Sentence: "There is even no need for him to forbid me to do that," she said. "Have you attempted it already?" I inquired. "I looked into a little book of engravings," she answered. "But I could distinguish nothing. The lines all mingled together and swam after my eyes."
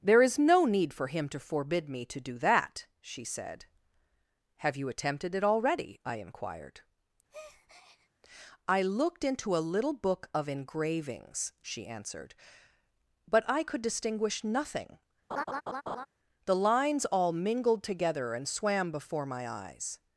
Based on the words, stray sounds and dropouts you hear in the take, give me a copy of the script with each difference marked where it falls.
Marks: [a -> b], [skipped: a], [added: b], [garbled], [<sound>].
"There is [skipped: even] no need for him to forbid me to do that," she said. "Have you attempted it already?" I inquired. [breath] "I looked into a little book of engravings," she answered. "But I could distinguish nothing. [laugh] The lines all mingled together and swam [after -> before] my eyes."